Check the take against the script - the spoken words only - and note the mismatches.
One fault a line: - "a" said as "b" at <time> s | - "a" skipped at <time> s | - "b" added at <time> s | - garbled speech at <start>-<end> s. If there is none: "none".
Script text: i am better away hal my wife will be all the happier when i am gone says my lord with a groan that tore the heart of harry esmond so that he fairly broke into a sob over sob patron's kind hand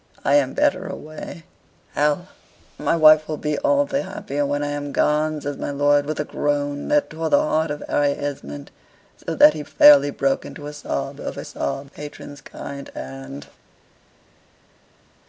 none